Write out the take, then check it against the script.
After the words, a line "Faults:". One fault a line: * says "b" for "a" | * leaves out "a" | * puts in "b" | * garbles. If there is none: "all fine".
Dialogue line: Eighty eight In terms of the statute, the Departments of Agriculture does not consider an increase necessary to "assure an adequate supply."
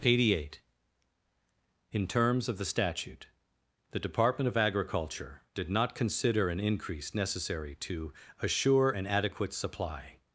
Eighty eight In terms of the statute, the Department of Agriculture did not consider an increase necessary to "assure an adequate supply."
Faults:
* says "Department" for "Departments"
* says "did" for "does"